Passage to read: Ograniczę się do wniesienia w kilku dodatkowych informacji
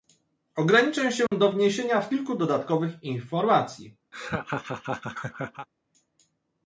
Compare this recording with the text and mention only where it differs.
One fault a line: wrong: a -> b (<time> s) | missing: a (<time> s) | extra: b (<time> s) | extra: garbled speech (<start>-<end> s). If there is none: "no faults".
no faults